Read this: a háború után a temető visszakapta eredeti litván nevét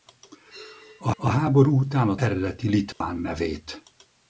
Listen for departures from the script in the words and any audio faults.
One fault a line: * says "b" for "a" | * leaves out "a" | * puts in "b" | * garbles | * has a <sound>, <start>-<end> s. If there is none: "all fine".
* puts in "a"
* leaves out "temető visszakapta"
* has a dropout, 2.9-3.0 s